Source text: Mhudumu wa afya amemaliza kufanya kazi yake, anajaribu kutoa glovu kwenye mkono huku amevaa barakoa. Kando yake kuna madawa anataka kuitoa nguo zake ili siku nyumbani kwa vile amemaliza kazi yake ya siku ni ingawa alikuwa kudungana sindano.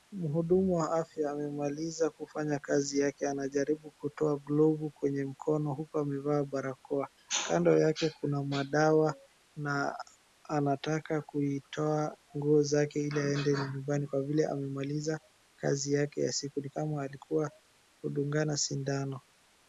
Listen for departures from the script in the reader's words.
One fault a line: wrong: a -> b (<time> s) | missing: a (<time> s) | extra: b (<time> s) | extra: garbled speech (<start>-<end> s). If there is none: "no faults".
extra: na (9.6 s)
wrong: siku -> aende (13.2 s)
wrong: ingawa -> kama (16.7 s)